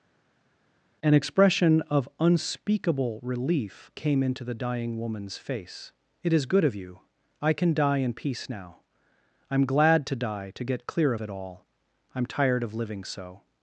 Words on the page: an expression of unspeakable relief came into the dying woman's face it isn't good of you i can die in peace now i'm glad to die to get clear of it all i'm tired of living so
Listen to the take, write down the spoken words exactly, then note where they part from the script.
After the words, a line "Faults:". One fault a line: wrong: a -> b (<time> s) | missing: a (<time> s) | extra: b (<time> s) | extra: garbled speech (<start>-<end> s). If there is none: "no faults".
an expression of unspeakable relief came into the dying woman's face it is good of you i can die in peace now i'm glad to die to get clear of it all i'm tired of living so
Faults:
wrong: isn't -> is (6.3 s)